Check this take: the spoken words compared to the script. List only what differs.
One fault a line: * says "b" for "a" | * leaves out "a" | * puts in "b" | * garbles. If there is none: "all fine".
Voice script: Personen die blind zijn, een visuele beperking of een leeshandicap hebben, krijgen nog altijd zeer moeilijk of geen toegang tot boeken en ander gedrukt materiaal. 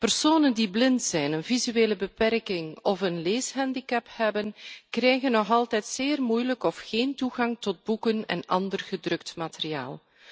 all fine